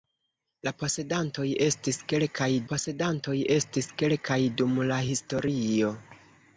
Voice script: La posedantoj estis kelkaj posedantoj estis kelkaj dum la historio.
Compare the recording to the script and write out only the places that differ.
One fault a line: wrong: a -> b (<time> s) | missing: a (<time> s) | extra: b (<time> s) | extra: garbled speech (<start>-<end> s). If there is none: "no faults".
no faults